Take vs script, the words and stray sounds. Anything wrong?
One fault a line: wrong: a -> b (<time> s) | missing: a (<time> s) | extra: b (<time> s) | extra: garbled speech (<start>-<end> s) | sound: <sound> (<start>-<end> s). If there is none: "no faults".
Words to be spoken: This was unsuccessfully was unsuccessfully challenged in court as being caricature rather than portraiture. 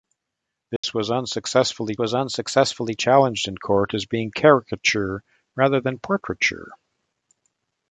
sound: dropout (0.8-0.8 s)